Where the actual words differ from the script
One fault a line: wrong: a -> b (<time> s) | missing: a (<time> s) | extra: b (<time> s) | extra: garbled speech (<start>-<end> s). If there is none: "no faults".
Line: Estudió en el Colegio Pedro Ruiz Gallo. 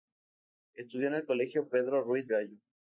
no faults